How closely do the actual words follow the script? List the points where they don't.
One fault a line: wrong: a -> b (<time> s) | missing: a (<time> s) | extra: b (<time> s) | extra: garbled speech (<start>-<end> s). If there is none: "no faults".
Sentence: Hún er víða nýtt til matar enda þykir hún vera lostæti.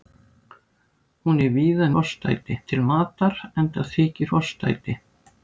wrong: nýtt -> lostæti (2.0 s)
missing: hún vera (4.3 s)